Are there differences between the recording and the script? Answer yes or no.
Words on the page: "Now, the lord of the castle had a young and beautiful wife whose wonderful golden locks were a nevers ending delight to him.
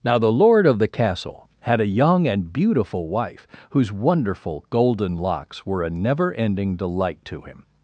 yes